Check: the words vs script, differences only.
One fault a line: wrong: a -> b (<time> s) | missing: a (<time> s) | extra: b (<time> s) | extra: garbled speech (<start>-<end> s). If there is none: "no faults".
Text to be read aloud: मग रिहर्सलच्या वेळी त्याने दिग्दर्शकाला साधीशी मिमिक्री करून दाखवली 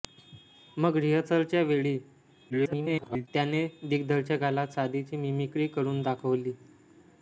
extra: garbled speech (2.5-3.3 s)